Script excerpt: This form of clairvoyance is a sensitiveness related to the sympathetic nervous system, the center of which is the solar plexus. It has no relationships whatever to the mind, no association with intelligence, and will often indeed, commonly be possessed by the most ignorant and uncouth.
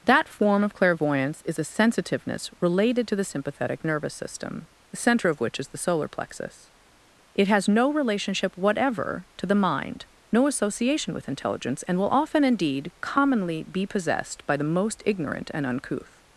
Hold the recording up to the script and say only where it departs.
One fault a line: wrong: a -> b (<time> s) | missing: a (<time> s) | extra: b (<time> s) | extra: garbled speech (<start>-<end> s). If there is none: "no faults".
wrong: This -> That (0.0 s)
wrong: relationships -> relationship (7.9 s)